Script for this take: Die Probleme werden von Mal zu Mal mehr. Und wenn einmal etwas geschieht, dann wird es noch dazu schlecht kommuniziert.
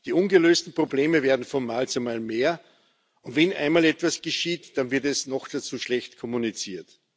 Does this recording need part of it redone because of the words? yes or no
yes